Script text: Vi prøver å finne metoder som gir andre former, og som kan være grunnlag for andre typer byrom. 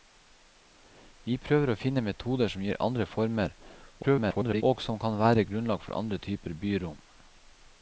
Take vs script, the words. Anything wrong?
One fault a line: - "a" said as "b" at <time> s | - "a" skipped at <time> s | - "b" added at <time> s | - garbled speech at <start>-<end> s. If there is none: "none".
- garbled speech at 4.0-4.6 s